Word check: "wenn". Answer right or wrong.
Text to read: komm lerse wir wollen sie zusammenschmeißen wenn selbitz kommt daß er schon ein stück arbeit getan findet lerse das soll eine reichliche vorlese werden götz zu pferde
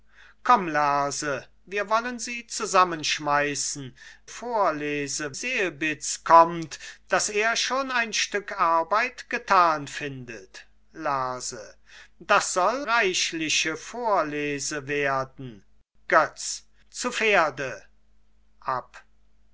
wrong